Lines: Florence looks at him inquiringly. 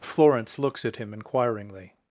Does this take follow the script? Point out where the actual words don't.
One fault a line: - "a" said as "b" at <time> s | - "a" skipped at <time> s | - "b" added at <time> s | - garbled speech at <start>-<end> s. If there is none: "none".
none